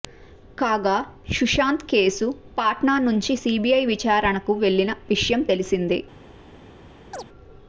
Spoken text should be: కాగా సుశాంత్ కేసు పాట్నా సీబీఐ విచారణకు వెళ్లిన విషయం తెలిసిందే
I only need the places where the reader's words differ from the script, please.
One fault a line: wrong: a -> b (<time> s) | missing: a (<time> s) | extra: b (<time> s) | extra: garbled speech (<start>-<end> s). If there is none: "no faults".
extra: నుంచి (3.1 s)